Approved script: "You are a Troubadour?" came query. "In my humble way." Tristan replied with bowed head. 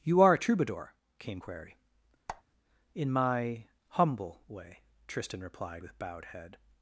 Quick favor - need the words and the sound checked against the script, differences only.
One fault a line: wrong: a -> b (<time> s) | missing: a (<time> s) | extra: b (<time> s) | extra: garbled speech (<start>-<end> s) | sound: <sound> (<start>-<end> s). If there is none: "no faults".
sound: squeak (2.3-2.4 s)